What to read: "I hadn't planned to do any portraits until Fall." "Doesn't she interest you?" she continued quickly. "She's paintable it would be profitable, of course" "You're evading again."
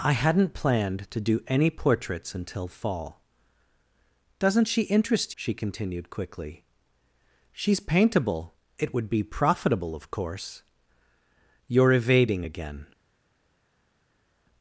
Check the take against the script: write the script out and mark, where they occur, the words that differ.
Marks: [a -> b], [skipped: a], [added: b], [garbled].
"I hadn't planned to do any portraits until Fall." "Doesn't she interest [skipped: you?"] she continued quickly. "She's paintable it would be profitable, of course" "You're evading again."